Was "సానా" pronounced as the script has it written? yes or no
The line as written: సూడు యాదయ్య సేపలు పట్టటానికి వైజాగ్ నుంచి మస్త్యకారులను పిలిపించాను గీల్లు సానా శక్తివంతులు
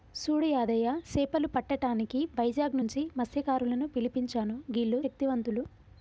no